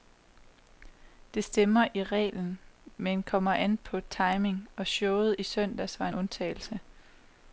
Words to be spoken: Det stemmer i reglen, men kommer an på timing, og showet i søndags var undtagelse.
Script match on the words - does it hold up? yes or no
yes